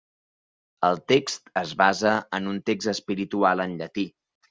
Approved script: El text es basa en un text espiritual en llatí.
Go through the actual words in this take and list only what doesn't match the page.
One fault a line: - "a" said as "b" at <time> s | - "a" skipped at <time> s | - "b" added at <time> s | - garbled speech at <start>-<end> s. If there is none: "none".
none